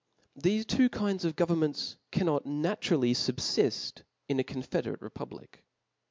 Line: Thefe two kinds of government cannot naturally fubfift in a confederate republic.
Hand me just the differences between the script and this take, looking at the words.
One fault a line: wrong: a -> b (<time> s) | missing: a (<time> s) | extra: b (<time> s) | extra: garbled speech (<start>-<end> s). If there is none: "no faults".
no faults